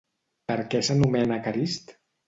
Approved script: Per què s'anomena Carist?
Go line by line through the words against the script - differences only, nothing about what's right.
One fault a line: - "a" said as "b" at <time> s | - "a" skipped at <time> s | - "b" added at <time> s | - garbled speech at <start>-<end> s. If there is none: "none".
none